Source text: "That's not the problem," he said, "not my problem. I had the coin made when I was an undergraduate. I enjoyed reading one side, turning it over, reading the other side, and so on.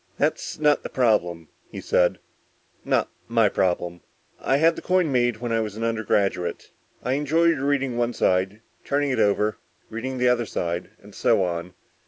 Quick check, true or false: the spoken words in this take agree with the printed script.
true